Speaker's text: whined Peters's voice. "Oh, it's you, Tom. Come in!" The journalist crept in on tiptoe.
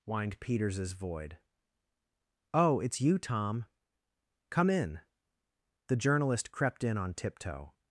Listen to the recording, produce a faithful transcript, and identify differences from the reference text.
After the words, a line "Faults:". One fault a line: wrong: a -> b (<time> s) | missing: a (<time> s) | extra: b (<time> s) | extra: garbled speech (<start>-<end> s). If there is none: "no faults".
whined Peters's void. "Oh, it's you, Tom. Come in!" The journalist crept in on tiptoe.
Faults:
wrong: voice -> void (0.9 s)